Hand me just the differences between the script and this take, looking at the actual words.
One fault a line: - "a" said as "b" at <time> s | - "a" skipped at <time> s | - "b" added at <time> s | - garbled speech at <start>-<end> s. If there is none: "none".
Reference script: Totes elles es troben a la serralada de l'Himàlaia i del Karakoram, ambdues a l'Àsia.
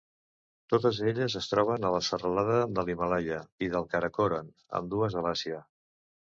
none